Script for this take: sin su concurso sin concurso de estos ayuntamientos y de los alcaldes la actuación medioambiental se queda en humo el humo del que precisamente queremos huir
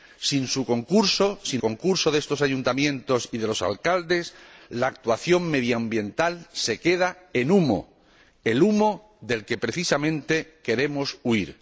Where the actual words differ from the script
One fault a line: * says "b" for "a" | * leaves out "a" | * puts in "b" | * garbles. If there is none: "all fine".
all fine